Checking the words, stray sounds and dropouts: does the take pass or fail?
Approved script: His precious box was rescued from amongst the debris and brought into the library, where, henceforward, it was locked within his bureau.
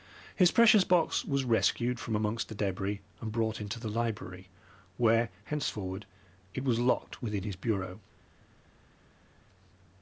pass